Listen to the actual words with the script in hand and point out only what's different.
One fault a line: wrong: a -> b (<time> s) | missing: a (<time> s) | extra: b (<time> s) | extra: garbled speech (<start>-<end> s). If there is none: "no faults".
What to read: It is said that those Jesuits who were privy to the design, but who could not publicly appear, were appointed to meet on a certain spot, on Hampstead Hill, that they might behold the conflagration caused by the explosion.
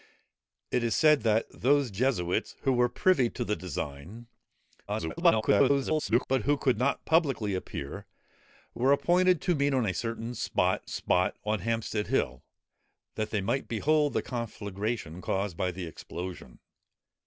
extra: garbled speech (4.9-6.3 s)
extra: spot (10.8 s)